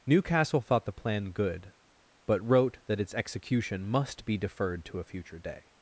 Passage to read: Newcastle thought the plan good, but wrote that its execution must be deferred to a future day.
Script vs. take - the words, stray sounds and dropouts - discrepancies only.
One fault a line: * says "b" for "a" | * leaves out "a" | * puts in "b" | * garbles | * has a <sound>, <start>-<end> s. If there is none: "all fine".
all fine